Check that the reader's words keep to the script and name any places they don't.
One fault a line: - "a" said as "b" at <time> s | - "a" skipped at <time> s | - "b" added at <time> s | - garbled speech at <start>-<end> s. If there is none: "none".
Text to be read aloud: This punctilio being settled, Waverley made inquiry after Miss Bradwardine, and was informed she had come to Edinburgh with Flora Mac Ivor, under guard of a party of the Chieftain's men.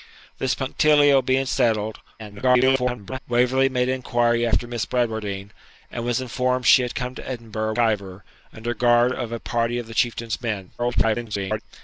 - garbled speech at 2.2-3.2 s
- "with Flora Mac" skipped at 7.8 s
- garbled speech at 10.8-11.6 s